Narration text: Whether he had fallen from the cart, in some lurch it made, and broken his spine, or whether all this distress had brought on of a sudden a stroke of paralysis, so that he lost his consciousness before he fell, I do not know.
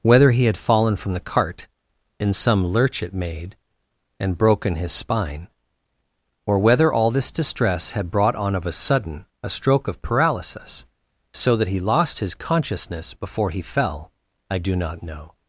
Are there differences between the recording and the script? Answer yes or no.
no